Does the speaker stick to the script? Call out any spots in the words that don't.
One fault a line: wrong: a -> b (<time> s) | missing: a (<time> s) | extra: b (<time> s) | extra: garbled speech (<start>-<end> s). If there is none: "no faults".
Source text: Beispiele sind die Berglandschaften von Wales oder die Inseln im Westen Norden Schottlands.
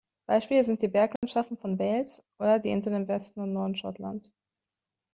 extra: und (3.4 s)